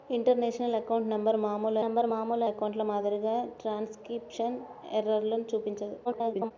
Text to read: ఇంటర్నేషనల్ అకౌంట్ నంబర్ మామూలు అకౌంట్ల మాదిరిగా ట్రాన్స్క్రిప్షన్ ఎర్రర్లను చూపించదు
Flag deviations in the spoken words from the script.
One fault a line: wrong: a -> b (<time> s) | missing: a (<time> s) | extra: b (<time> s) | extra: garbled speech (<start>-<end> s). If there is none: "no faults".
extra: నంబర్ మామూలు (1.8 s)
extra: garbled speech (6.0-6.5 s)